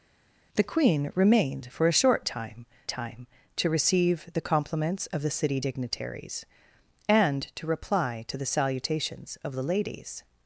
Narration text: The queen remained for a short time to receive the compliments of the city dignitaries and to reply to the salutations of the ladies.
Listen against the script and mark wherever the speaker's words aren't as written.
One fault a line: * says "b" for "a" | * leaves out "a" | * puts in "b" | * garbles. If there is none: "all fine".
* puts in "time"